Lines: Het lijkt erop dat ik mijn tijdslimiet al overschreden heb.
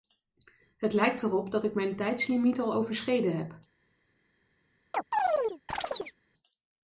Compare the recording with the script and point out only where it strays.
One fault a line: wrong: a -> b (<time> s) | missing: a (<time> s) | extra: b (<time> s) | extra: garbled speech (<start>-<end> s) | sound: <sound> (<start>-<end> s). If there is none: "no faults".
sound: chirp (4.9-6.1 s)